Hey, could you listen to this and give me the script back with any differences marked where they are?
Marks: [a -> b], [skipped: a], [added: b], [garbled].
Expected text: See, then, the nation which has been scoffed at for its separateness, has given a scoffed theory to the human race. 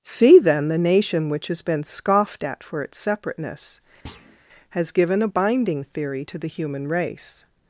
See, then, the nation which has been scoffed at for its separateness, has given a [scoffed -> binding] theory to the human race.